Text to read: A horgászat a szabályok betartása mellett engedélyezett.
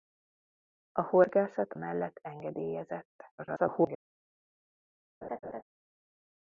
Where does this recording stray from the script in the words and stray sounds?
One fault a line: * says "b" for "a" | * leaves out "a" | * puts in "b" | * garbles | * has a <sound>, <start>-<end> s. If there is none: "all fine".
* leaves out "a szabályok betartása"
* garbles
* has a laugh, 5.2-5.6 s